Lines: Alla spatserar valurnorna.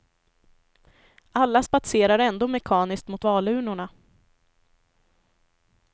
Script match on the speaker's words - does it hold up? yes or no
no